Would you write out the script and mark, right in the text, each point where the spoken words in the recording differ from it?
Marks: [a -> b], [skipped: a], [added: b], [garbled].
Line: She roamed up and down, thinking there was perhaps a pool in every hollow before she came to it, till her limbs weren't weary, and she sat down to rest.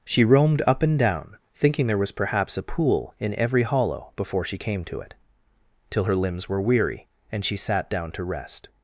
She roamed up and down, thinking there was perhaps a pool in every hollow before she came to it, till her limbs [weren't -> were] weary, and she sat down to rest.